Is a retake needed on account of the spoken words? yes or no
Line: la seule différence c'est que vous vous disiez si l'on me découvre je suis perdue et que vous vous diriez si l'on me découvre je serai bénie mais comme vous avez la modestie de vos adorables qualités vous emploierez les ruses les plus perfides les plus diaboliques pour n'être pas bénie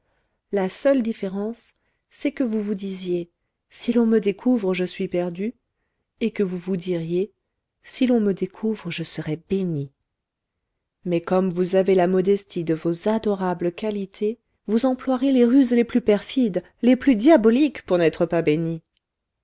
no